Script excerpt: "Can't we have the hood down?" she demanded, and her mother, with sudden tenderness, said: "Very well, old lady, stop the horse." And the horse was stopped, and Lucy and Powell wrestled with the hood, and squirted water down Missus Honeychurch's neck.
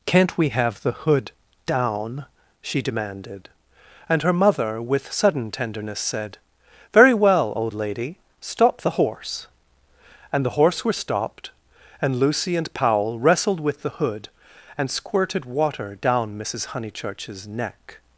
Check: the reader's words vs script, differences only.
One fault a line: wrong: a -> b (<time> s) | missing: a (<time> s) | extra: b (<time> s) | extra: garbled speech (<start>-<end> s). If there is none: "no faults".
wrong: was -> were (10.8 s)